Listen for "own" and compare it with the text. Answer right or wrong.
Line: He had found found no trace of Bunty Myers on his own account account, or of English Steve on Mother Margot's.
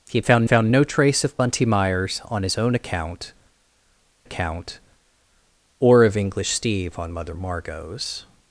right